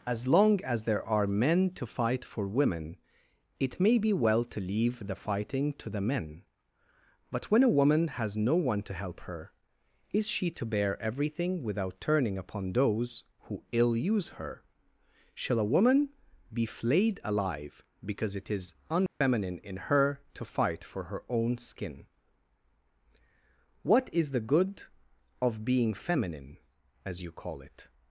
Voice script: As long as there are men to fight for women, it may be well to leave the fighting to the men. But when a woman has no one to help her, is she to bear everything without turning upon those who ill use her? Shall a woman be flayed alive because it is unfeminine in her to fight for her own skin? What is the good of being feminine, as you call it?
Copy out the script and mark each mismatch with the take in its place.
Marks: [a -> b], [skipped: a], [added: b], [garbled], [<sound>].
As long as there are men to fight for women, it may be well to leave the fighting to the men. But when a woman has no one to help her, is she to bear everything without turning upon those who ill use her? Shall a woman be flayed alive because it is unfeminine [dropout] in her to fight for her own skin? What is the good of being feminine, as you call it?